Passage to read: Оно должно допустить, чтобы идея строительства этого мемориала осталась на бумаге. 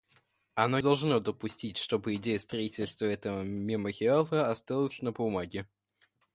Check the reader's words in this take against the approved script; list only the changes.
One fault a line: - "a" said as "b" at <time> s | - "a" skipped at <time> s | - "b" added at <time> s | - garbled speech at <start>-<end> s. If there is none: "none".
none